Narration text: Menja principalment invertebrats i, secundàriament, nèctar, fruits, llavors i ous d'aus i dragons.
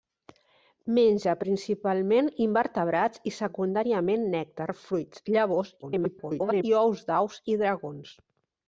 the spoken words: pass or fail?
fail